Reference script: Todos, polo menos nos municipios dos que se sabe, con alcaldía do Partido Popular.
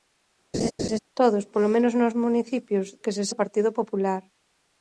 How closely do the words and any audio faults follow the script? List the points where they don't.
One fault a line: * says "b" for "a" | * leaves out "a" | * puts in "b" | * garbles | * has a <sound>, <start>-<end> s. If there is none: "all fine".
* has a laugh, 0.5-1.0 s
* leaves out "dos"
* leaves out "sabe con alcaldía"